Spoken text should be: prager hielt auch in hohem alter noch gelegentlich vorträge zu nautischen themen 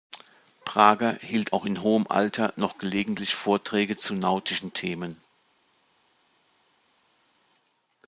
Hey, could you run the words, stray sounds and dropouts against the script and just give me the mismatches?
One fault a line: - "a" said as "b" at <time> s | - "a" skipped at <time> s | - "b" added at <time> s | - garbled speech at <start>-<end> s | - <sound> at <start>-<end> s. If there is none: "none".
none